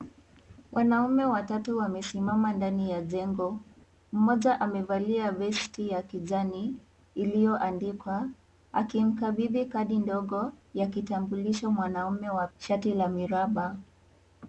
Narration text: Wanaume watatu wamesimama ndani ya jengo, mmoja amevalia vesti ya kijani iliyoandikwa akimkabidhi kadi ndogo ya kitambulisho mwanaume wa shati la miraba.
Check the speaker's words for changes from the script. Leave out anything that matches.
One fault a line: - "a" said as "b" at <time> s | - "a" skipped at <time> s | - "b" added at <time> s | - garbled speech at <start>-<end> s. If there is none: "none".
none